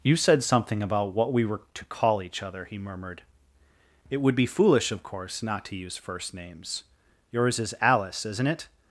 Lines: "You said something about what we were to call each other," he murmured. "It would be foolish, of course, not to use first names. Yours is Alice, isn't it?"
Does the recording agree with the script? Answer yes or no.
yes